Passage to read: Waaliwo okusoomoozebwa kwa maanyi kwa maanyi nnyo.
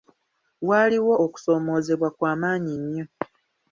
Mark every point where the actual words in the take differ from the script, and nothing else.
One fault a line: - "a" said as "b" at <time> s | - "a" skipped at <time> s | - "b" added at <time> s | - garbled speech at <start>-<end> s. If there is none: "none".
- "kwa maanyi" skipped at 2.7 s